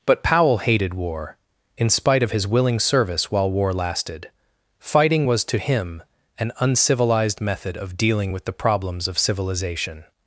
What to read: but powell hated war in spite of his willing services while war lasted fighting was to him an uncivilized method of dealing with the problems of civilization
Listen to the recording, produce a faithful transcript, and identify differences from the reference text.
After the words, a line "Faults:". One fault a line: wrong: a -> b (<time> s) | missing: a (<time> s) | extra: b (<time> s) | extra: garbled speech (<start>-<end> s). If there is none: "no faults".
but powell hated war in spite of his willing service while war lasted fighting was to him an uncivilized method of dealing with the problems of civilization
Faults:
wrong: services -> service (2.8 s)